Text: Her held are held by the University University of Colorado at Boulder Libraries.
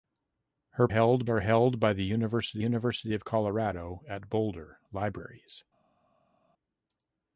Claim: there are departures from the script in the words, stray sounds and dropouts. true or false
false